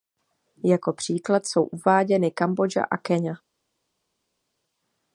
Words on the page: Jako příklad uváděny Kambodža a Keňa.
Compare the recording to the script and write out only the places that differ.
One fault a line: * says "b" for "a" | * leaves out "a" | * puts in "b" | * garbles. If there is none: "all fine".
* puts in "jsou"